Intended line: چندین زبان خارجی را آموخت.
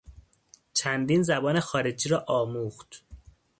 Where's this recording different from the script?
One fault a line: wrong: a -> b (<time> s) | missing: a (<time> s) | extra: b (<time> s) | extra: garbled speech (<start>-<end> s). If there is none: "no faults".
no faults